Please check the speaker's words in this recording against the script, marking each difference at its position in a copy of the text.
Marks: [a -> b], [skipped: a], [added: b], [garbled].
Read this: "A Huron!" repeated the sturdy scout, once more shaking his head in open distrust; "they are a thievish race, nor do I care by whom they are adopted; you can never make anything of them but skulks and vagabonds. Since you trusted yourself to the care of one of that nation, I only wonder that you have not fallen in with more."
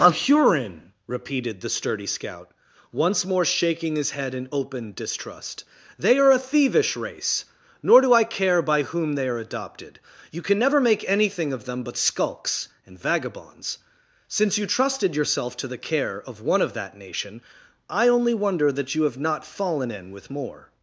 "A Huron!" repeated the sturdy scout, once more shaking his head in open distrust; "they are a thievish race, nor do I care by whom they are adopted; you can never make anything of them but skulks and vagabonds. Since you trusted yourself to the care of one of that nation, I only wonder that you have not fallen in with more."